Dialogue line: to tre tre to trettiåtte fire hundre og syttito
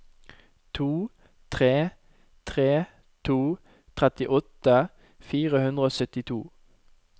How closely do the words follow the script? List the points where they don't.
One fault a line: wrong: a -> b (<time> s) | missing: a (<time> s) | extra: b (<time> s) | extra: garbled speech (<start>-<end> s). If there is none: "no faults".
no faults